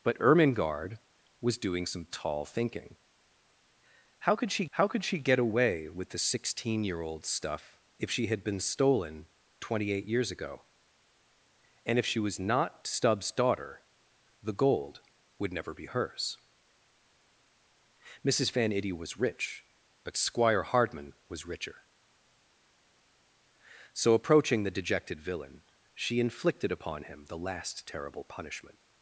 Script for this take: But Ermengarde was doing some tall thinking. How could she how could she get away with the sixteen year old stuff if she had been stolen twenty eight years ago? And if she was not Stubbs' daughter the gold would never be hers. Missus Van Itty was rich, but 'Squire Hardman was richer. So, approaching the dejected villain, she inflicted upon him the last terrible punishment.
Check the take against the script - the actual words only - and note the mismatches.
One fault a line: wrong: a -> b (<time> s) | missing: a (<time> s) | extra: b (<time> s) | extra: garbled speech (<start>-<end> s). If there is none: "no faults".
no faults